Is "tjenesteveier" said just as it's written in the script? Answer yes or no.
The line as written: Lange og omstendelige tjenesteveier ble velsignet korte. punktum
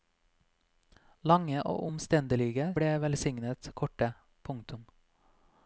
no